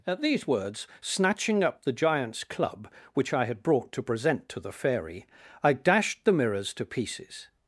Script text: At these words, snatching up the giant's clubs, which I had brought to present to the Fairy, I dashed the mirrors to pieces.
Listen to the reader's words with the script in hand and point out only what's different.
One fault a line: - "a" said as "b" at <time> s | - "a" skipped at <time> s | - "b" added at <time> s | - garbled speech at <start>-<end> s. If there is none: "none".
- "clubs" said as "club" at 2.4 s